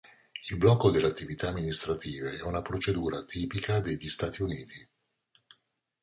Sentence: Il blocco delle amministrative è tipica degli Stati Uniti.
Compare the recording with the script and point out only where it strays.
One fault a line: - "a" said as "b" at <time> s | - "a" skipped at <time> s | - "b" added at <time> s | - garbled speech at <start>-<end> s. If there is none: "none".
- "attività" added at 1.1 s
- "una procedura" added at 2.4 s